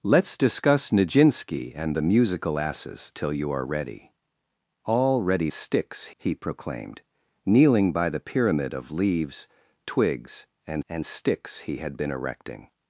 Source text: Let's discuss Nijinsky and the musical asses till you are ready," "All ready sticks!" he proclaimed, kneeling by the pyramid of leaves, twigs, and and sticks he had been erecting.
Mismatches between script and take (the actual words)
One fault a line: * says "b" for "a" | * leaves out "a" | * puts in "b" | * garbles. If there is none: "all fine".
all fine